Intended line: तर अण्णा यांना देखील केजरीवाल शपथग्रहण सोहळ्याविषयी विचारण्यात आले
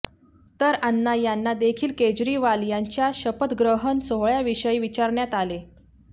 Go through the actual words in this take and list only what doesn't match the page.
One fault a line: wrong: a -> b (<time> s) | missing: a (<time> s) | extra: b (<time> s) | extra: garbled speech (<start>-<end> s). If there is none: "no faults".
extra: यांच्या (2.6 s)